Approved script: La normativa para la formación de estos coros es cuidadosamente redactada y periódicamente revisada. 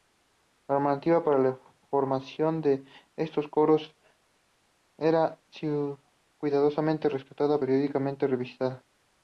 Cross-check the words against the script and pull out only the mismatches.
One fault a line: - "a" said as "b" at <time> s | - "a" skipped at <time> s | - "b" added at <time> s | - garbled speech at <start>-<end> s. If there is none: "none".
- "es" said as "era" at 5.0 s